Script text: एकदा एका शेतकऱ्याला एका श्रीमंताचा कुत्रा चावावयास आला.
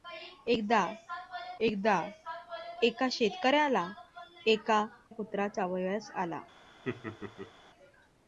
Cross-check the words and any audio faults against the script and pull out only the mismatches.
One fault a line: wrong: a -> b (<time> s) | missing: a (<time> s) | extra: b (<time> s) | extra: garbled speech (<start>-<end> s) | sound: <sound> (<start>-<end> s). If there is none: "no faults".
extra: एकदा (1.6 s)
missing: श्रीमंताचा (4.8 s)
sound: laugh (6.8-7.5 s)